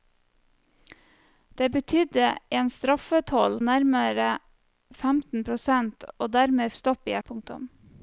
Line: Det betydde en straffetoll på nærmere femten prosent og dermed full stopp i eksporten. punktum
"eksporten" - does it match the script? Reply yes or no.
no